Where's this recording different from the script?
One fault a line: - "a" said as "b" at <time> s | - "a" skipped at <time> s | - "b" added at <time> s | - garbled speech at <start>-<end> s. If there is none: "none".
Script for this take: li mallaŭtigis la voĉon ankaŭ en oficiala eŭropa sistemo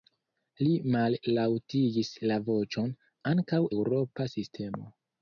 - "en oficiala" skipped at 3.6 s